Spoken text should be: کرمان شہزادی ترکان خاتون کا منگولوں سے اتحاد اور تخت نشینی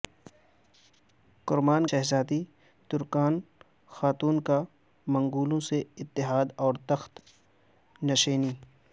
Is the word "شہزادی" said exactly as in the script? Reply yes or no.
yes